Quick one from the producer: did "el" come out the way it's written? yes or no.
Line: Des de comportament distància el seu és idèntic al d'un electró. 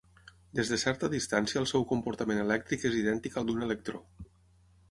yes